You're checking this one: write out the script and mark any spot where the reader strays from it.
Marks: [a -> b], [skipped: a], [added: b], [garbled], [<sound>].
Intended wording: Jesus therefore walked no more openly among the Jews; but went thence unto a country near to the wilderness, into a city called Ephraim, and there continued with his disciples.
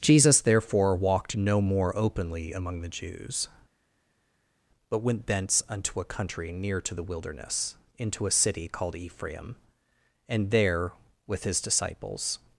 Jesus therefore walked no more openly among the Jews; but went thence unto a country near to the wilderness, into a city called Ephraim, and there [skipped: continued] with his disciples.